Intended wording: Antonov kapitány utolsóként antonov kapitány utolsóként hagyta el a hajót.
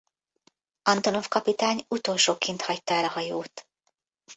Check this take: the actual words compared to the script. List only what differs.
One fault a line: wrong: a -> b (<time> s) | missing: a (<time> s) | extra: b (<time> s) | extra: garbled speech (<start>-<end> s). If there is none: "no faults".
missing: antonov kapitány utolsóként (2.6 s)